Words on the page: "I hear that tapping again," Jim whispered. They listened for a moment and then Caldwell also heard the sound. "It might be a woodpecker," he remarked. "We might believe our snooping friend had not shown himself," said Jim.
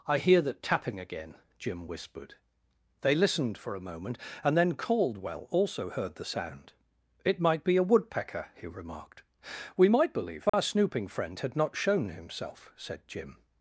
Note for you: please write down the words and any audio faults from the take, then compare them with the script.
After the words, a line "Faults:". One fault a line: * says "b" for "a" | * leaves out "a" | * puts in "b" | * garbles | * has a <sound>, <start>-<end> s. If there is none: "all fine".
"I hear that tapping again," Jim whispered. They listened for a moment and then Caldwell also heard the sound. "It might be a woodpecker," he remarked. "We might believe our snooping friend had not shown himself," said Jim.
Faults:
* has a dropout, 10.5-10.5 s